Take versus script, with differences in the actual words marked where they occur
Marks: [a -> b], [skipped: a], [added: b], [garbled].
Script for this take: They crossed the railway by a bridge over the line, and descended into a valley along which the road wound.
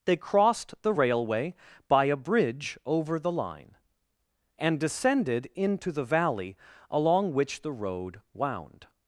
They crossed the railway by a bridge over the line, and descended into [a -> the] valley along which the road wound.